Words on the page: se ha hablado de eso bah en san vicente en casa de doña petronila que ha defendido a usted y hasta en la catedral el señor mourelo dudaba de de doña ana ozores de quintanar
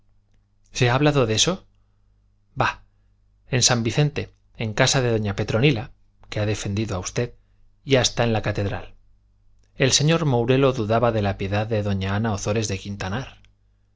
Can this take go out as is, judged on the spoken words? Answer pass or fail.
fail